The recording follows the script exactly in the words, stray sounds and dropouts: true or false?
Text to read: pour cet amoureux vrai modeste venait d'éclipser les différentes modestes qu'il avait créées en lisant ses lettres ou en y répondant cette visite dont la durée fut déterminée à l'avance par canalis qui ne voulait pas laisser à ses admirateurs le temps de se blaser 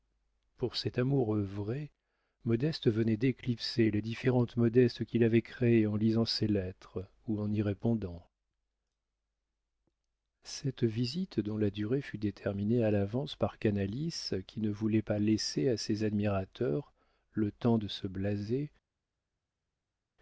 true